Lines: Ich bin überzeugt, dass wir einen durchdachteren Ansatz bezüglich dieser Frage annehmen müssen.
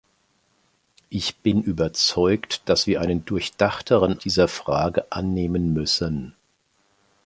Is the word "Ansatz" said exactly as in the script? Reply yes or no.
no